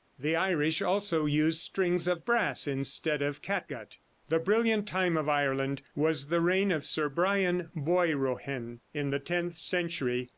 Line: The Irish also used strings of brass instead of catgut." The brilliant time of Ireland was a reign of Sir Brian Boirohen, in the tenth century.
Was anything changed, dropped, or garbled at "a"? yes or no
yes